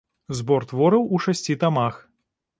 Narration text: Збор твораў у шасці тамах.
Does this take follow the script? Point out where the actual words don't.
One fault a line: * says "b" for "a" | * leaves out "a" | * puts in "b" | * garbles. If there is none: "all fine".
all fine